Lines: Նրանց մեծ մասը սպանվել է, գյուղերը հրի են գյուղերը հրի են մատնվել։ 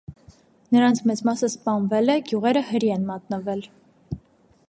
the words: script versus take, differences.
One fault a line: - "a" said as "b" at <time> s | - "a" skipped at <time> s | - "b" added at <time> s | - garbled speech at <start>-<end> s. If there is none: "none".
- "գյուղերը հրի են" skipped at 3.1 s